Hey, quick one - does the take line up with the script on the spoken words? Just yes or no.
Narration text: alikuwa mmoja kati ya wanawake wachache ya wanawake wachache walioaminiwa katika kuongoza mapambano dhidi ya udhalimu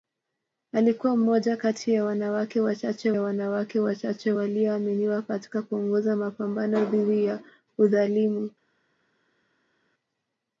yes